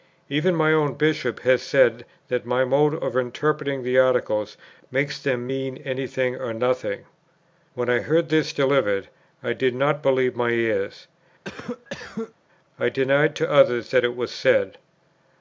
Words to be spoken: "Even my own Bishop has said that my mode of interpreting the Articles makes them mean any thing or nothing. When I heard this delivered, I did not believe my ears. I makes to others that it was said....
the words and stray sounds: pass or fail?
fail